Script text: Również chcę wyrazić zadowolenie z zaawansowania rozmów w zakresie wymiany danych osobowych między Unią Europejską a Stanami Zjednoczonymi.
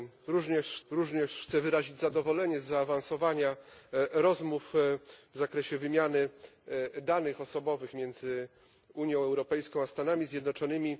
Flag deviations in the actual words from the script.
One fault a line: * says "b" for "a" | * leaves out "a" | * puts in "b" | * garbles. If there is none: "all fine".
* puts in "również"